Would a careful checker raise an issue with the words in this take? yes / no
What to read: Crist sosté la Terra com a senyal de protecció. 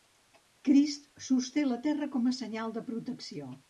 no